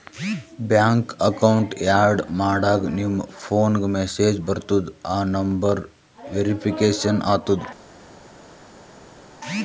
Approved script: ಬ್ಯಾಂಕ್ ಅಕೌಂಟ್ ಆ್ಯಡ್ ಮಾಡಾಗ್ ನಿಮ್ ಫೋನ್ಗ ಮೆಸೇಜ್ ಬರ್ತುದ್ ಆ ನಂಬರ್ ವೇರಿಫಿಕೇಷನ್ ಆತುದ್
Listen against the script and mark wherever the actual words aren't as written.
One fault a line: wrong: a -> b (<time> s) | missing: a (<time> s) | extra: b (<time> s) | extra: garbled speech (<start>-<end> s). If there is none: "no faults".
no faults